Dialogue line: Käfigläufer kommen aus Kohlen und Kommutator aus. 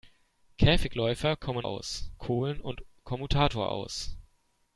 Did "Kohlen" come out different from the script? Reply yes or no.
no